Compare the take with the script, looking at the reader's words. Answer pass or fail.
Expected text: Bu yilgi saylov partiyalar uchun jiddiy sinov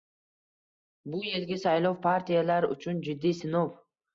pass